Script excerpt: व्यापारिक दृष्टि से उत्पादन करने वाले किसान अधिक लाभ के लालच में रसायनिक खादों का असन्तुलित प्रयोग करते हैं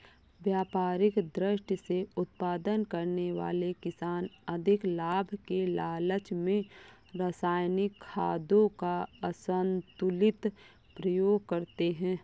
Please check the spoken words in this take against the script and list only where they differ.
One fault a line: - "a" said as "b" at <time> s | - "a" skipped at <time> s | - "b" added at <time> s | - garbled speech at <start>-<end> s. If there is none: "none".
none